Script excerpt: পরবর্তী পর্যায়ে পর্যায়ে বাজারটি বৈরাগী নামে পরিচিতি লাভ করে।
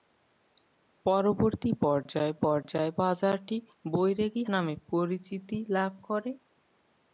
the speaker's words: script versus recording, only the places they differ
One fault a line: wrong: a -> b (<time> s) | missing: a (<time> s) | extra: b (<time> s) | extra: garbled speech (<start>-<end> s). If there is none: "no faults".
no faults